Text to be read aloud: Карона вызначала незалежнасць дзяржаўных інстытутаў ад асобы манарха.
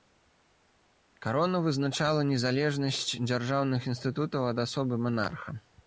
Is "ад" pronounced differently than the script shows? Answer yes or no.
no